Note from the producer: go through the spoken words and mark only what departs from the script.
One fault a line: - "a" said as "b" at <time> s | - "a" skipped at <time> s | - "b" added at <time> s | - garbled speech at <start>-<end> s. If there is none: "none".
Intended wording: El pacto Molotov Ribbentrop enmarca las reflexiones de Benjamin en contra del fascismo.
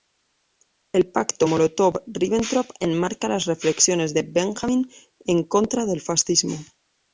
none